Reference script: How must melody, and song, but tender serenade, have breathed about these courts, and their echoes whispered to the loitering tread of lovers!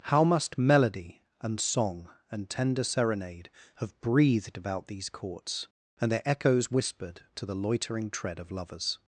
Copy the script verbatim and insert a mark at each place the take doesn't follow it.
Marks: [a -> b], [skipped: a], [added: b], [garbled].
How must melody, and song, [but -> and] tender serenade, have breathed about these courts, and their echoes whispered to the loitering tread of lovers!